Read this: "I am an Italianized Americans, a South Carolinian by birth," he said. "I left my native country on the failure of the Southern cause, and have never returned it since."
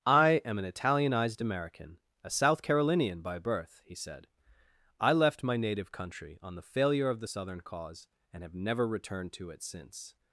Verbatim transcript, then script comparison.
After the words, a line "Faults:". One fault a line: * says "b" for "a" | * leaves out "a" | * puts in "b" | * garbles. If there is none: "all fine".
"I am an Italianized American, a South Carolinian by birth," he said. "I left my native country on the failure of the Southern cause, and have never returned to it since."
Faults:
* says "American" for "Americans"
* puts in "to"